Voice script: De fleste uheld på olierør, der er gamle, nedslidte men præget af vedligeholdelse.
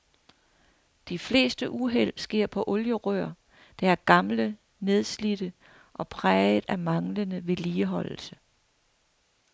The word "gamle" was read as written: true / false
true